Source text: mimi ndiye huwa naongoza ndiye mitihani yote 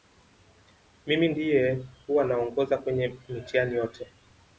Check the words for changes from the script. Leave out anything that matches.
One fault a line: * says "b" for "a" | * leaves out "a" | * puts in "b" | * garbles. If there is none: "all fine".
* says "kwenye" for "ndiye"